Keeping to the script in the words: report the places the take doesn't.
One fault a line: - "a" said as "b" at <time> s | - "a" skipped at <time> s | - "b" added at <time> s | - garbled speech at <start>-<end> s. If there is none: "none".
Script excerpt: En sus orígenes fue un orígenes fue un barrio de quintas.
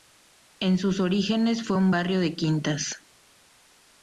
- "orígenes fue un" skipped at 1.9 s